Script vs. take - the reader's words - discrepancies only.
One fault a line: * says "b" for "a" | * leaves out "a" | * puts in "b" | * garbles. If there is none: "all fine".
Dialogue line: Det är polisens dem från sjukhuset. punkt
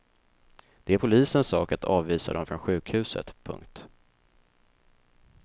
* puts in "sak att avvisa"